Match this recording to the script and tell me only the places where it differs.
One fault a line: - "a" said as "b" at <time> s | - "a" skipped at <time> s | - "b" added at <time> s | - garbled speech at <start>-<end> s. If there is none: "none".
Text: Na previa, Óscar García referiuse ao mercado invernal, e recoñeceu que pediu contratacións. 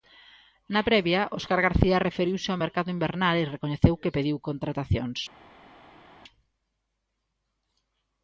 none